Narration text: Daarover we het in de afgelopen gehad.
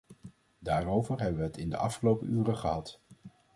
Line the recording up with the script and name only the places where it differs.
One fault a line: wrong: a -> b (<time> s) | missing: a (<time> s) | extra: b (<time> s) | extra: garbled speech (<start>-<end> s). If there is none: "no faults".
extra: hebben (1.2 s)
extra: uren (2.3 s)